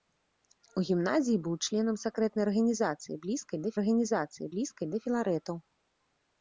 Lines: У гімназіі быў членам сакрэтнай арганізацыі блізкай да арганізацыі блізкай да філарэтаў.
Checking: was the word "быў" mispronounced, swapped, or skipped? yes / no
no